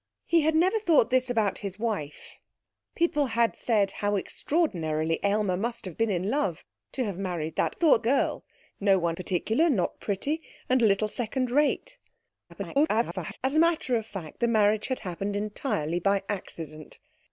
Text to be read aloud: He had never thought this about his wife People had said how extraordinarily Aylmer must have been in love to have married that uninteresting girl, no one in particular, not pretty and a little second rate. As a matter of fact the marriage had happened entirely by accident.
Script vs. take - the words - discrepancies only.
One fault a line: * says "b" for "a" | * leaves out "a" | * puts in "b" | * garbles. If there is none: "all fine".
* says "thought" for "uninteresting"
* leaves out "in"
* garbles